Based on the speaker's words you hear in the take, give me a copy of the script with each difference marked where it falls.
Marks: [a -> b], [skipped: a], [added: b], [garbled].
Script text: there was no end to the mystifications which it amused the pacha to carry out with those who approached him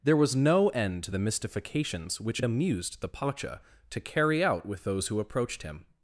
there was no end to the mystifications which it amused the pacha to carry out with those who approached him